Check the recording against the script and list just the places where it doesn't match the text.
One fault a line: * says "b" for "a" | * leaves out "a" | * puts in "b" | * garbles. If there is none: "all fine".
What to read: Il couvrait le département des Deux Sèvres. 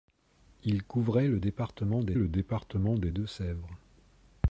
* puts in "le département des"